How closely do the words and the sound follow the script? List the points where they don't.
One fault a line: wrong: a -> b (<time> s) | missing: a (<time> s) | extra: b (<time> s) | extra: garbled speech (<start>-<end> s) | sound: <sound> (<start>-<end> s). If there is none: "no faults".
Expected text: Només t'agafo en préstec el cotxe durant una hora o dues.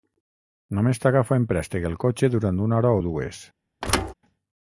sound: thud (3.8-4.1 s)